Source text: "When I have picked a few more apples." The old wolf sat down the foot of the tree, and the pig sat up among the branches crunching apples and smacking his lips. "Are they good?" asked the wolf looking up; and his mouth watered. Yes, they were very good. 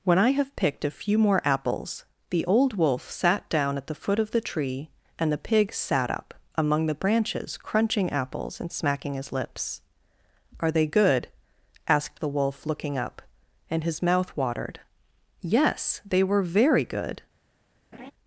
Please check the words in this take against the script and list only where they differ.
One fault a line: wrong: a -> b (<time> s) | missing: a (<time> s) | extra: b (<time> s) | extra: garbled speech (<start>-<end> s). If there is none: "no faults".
extra: at (3.8 s)